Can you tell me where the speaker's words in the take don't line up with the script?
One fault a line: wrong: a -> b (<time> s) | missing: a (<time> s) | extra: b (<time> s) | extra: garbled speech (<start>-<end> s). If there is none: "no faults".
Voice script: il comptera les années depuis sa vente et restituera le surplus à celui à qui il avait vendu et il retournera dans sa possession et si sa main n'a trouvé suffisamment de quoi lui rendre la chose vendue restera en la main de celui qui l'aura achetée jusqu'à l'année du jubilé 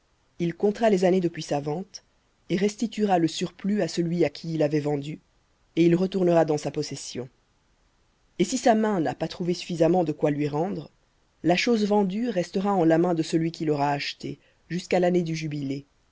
extra: pas (9.1 s)